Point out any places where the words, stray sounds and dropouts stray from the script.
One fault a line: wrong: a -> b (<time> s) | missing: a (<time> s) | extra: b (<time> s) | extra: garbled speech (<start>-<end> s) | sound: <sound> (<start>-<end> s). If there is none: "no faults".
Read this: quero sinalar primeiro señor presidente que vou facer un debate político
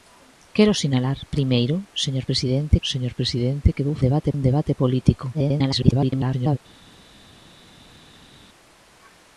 extra: señor presidente (2.9 s)
wrong: facer -> debate (4.0 s)
extra: garbled speech (5.3-6.6 s)